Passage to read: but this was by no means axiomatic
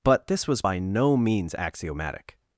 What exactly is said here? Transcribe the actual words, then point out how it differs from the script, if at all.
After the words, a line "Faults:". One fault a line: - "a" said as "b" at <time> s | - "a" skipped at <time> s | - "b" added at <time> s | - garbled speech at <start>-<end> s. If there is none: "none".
but this was by no means axiomatic
Faults:
none